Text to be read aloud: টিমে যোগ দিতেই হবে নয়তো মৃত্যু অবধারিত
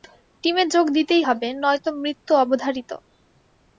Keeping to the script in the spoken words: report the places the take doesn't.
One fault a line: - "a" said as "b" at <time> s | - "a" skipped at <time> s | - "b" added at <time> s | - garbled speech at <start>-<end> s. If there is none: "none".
none